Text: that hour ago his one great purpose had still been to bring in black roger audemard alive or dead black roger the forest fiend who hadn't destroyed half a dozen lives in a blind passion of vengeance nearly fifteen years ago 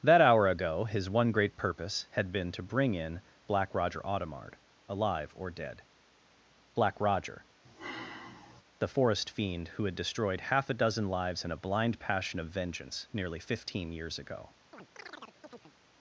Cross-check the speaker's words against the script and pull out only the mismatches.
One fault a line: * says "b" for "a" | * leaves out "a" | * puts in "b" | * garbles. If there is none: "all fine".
* leaves out "still"
* says "had" for "hadn't"